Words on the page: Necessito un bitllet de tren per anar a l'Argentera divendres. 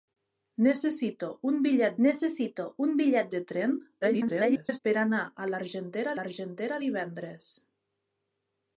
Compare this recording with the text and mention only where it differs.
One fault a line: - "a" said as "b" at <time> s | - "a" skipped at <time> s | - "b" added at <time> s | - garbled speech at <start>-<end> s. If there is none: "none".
- "necessito un bitllet" added at 2.1 s
- garbled speech at 4.0-4.8 s
- "l'Argentera" added at 6.2 s